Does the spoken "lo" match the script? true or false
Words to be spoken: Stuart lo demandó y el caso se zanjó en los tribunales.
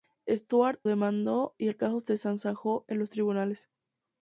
false